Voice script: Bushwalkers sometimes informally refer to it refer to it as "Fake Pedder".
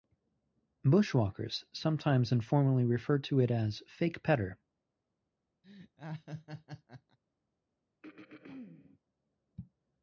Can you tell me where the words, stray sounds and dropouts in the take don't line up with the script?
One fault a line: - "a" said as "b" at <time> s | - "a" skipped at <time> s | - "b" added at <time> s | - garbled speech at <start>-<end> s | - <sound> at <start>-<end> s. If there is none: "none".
- "refer to it" skipped at 3.5 s
- laugh at 5.6-7.2 s
- throat clearing at 8.0-9.0 s